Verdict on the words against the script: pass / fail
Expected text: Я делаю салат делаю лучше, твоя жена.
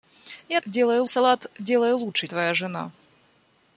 pass